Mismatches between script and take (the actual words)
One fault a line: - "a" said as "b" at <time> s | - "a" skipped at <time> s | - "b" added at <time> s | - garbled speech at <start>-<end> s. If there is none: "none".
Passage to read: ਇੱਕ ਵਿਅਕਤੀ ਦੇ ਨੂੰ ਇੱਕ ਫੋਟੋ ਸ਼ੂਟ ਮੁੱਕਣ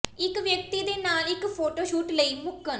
- "ਨੂੰ" said as "ਨਾਲ" at 1.0 s
- "ਲਈ" added at 2.1 s